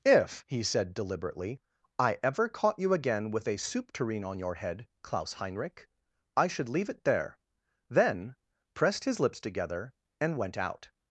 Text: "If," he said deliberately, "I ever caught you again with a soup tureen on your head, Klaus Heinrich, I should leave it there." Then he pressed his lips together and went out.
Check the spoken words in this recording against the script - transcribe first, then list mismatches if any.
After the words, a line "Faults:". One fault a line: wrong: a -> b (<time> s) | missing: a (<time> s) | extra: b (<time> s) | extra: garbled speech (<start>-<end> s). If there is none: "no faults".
"If," he said deliberately, "I ever caught you again with a soup tureen on your head, Klaus Heinrich, I should leave it there." Then pressed his lips together and went out.
Faults:
missing: he (8.3 s)